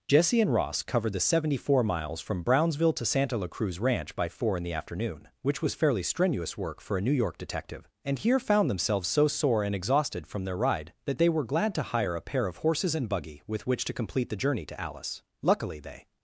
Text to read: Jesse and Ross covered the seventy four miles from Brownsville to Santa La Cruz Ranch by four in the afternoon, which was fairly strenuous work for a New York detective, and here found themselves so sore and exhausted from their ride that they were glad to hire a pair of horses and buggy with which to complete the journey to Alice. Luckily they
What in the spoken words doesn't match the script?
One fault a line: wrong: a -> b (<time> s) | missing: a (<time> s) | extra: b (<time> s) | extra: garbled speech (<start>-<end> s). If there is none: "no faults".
no faults